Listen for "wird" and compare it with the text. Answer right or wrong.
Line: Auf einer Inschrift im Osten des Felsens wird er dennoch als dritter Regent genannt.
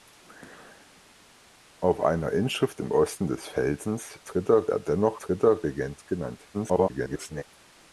wrong